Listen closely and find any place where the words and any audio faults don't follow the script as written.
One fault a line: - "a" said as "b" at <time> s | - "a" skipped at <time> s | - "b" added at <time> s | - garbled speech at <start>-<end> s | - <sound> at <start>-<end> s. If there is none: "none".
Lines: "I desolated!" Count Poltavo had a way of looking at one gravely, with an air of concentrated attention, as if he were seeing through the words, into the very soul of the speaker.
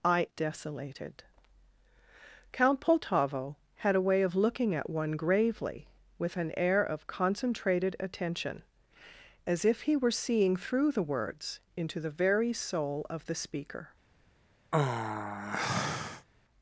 - sigh at 14.7-16.3 s